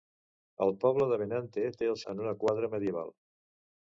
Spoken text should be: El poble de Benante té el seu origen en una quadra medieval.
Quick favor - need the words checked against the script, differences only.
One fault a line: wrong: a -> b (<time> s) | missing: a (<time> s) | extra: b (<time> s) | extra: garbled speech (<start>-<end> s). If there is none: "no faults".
missing: seu origen (2.0 s)